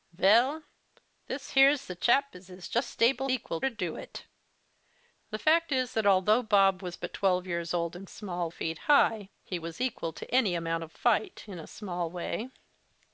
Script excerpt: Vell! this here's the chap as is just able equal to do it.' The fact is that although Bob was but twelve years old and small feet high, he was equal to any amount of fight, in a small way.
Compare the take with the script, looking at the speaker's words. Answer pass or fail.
pass